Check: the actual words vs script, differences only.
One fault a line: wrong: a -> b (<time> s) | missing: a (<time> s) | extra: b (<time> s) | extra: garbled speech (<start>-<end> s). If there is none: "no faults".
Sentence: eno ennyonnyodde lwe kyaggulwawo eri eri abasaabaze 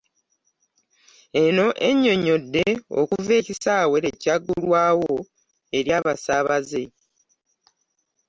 extra: okuva ekisaawe (3.0 s)
missing: eri (5.9 s)